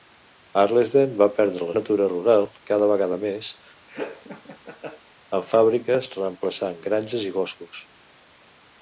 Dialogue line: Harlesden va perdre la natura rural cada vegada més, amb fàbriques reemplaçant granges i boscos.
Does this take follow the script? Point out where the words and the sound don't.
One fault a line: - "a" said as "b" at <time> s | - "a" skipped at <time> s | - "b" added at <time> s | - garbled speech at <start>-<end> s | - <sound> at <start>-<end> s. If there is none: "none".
- laugh at 3.9-5.0 s